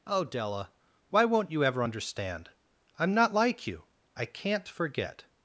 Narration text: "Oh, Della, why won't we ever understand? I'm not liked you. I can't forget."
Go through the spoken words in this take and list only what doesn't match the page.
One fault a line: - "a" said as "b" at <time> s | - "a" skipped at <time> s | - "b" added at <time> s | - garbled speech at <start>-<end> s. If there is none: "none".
- "we" said as "you" at 1.5 s
- "liked" said as "like" at 3.3 s